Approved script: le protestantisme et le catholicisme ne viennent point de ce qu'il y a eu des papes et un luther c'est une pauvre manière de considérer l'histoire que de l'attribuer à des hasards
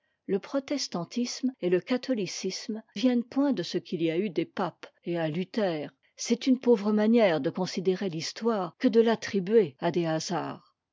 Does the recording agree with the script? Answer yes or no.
no